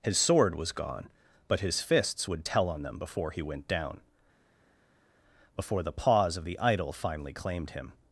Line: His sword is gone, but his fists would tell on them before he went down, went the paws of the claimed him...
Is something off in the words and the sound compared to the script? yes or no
yes